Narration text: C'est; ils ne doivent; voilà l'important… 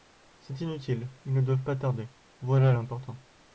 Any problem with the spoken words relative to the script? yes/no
yes